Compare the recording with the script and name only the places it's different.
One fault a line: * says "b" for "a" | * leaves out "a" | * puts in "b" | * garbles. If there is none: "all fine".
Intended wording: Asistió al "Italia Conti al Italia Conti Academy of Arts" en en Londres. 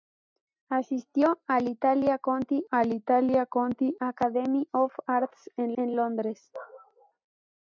all fine